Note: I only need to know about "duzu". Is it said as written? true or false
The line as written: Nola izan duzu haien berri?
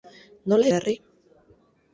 false